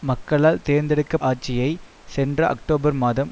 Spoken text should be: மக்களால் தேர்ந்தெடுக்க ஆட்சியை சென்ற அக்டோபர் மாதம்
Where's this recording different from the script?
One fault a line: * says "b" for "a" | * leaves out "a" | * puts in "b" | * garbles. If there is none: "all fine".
all fine